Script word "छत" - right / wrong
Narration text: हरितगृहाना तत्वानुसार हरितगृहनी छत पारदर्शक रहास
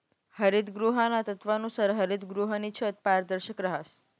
right